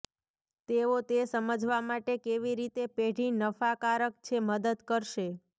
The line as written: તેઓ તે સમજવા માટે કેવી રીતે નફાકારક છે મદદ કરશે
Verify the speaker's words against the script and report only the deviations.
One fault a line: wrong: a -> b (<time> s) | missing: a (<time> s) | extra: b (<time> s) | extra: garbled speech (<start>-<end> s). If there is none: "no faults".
extra: પેઢી (3.0 s)